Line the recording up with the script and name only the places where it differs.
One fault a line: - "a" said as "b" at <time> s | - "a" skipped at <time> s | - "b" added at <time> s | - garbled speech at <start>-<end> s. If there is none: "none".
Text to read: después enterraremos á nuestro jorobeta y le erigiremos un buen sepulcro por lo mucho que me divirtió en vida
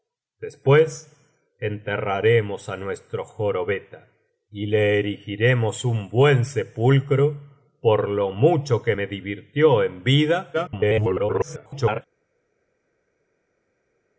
- garbled speech at 10.5-12.0 s